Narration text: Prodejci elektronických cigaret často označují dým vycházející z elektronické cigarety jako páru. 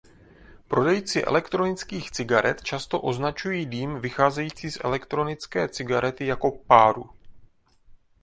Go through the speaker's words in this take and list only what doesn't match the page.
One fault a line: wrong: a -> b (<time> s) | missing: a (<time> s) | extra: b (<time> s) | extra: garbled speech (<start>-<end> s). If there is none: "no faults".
no faults